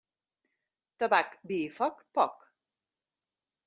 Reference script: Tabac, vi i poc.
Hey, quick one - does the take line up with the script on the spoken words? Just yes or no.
no